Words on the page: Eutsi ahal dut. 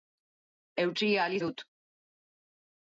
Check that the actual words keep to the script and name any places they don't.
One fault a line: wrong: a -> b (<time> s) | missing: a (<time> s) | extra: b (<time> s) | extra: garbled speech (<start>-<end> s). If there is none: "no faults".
no faults